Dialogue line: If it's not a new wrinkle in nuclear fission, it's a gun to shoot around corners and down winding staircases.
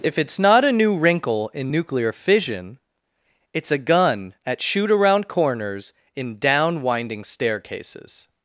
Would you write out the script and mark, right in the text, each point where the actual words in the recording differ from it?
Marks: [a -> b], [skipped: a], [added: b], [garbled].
If it's not a new wrinkle in nuclear fission, it's a gun [to -> at] shoot around corners [and -> in] down winding staircases.